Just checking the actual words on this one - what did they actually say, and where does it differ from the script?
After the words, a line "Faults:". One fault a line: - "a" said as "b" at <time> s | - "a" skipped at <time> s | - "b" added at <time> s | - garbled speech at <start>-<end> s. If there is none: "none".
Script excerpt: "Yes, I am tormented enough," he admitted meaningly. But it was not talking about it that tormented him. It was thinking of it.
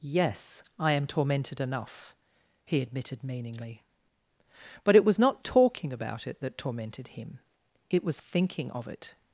"Yes, I am tormented enough," he admitted meaningly. But it was not talking about it that tormented him. It was thinking of it.
Faults:
none